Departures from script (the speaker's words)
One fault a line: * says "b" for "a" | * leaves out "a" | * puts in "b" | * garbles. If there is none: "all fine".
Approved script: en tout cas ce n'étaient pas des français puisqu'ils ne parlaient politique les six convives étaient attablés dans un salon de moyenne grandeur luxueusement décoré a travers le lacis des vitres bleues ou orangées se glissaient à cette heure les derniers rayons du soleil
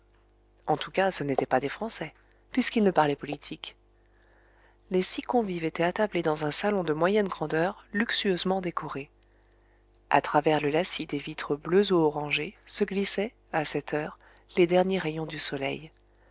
all fine